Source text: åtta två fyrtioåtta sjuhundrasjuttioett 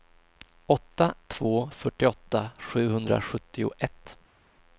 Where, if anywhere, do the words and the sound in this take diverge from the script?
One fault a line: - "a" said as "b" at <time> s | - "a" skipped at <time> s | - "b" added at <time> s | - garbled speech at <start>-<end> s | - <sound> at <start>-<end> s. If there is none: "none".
none